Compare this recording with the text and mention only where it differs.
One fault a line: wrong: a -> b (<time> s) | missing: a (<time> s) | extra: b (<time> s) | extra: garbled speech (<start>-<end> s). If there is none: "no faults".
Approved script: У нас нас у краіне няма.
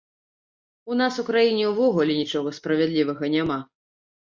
missing: нас (1.2 s)
extra: ўвогуле нічога справядлівага (1.8 s)